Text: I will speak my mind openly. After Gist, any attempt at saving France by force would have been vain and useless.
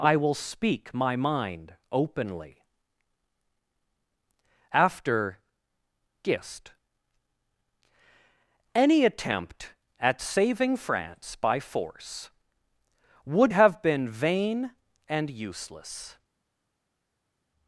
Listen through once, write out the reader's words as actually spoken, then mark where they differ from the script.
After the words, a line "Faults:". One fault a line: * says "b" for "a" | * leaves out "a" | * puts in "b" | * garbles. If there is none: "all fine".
I will speak my mind openly. After Gist, any attempt at saving France by force would have been vain and useless.
Faults:
all fine